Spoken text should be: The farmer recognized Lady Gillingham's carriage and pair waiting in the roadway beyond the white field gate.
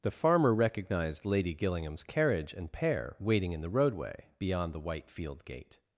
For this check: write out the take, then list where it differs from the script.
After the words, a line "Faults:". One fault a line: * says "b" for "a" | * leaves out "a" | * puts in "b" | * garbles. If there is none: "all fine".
The farmer recognized Lady Gillingham's carriage and pair waiting in the roadway beyond the white field gate.
Faults:
all fine